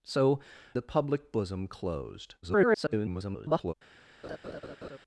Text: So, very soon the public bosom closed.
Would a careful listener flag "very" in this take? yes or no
yes